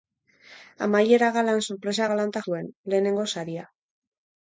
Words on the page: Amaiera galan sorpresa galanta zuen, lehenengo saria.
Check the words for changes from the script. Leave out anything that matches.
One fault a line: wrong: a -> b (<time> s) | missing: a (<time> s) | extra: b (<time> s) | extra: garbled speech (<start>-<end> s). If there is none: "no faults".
no faults